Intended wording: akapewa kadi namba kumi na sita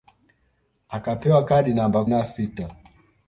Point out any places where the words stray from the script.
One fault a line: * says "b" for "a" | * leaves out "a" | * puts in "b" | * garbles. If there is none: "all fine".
* leaves out "kumi"